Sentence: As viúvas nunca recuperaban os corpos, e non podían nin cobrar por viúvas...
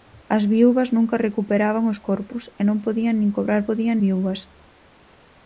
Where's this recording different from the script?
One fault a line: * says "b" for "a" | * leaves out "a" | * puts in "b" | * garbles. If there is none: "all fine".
* says "podían" for "por"